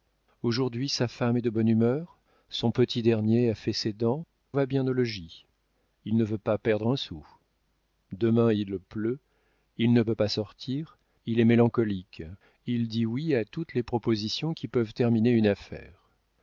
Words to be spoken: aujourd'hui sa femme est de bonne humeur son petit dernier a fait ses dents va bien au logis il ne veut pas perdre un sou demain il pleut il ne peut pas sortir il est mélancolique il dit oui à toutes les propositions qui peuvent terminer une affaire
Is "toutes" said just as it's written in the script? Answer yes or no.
yes